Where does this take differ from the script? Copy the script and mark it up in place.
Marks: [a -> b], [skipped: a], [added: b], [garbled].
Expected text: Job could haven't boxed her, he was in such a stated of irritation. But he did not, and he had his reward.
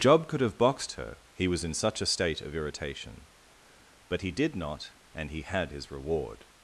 Job could [haven't -> have] boxed her, he was in such a [stated -> state] of irritation. But he did not, and he had his reward.